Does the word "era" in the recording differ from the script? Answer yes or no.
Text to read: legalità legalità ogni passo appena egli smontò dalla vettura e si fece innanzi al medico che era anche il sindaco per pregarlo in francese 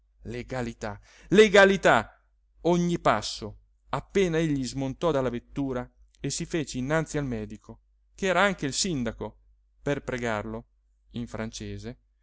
no